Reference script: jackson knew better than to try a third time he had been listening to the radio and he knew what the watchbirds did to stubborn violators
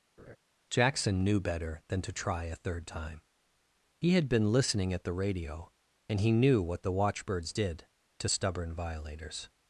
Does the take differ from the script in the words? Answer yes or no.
yes